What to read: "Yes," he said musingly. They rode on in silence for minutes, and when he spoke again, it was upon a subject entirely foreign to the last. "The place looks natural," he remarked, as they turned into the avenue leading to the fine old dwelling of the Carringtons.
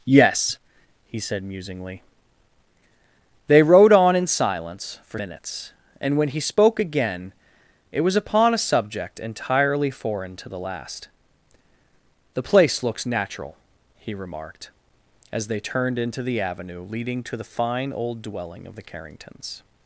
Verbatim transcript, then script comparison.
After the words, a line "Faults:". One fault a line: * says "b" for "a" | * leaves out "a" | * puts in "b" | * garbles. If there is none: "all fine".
"Yes," he said musingly. They rode on in silence for minutes, and when he spoke again, it was upon a subject entirely foreign to the last. "The place looks natural," he remarked, as they turned into the avenue leading to the fine old dwelling of the Carringtons.
Faults:
all fine